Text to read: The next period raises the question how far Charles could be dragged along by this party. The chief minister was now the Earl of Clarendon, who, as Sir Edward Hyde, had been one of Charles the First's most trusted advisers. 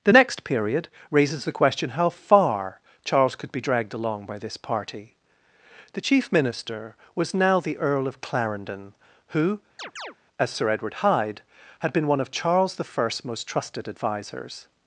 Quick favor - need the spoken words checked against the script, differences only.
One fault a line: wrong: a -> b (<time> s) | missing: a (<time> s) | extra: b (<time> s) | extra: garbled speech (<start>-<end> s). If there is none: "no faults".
no faults